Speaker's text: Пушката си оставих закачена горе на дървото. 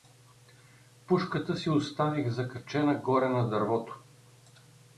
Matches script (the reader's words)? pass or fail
pass